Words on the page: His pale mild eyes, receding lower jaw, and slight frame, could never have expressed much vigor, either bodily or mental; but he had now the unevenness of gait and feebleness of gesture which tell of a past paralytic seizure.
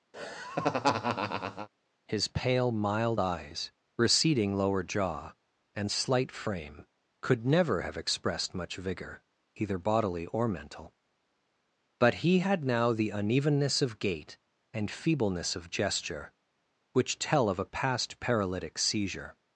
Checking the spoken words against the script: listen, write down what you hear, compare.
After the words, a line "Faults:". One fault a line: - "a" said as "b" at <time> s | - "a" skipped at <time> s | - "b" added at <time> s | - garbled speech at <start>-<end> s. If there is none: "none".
His pale mild eyes, receding lower jaw, and slight frame, could never have expressed much vigor, either bodily or mental; but he had now the unevenness of gait and feebleness of gesture which tell of a past paralytic seizure.
Faults:
none